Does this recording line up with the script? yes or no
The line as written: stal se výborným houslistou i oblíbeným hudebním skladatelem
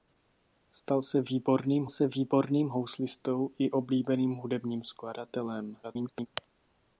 no